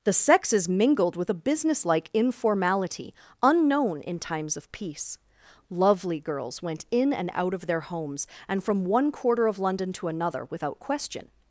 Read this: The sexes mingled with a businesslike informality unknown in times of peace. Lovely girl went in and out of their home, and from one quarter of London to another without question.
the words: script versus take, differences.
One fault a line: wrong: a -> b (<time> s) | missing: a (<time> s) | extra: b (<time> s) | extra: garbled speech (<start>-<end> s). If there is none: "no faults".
wrong: girl -> girls (6.2 s)
wrong: home -> homes (7.8 s)